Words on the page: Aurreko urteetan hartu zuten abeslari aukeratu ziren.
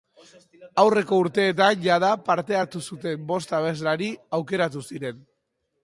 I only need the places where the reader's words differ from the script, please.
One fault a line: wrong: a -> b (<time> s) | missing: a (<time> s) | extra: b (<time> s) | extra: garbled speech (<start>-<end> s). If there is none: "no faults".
extra: jada parte (1.9 s)
extra: bost (3.3 s)